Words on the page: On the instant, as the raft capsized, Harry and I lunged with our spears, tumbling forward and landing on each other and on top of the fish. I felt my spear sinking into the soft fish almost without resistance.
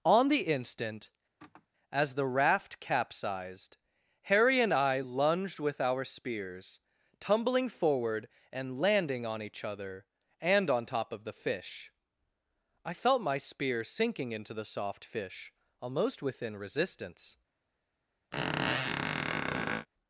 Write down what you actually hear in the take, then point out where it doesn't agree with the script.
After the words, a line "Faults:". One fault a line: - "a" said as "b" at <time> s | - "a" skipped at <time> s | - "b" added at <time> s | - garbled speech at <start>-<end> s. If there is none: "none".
On the instant, as the raft capsized, Harry and I lunged with our spears, tumbling forward and landing on each other and on top of the fish. I felt my spear sinking into the soft fish almost within resistance.
Faults:
- "without" said as "within" at 16.2 s